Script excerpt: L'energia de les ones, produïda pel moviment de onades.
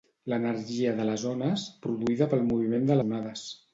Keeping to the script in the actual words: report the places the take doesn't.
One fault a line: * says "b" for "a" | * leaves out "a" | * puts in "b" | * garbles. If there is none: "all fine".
all fine